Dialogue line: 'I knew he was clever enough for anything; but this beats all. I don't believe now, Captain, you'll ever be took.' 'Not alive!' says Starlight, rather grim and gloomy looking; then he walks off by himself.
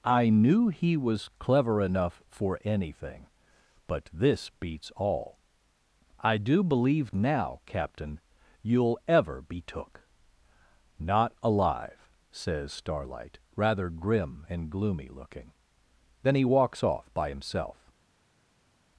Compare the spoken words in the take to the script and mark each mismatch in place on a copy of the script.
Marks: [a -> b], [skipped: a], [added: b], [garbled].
'I knew he was clever enough for anything; but this beats all. I [don't -> do] believe now, Captain, you'll ever be took.' 'Not alive!' says Starlight, rather grim and gloomy looking; then he walks off by himself.